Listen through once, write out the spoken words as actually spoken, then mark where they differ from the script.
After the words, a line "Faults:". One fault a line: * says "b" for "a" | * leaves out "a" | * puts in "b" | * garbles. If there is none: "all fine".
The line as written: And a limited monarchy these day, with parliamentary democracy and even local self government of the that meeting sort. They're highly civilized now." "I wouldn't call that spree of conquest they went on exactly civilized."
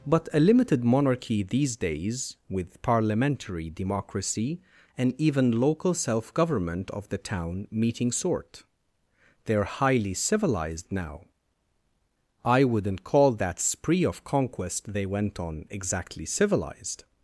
But a limited monarchy these days, with parliamentary democracy and even local self government of the town meeting sort. They're highly civilized now." "I wouldn't call that spree of conquest they went on exactly civilized."
Faults:
* says "But" for "And"
* says "days" for "day"
* says "town" for "that"